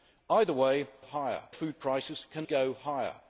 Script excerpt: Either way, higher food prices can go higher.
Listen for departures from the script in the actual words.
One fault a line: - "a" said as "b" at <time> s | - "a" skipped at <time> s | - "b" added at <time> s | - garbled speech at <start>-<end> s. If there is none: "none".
none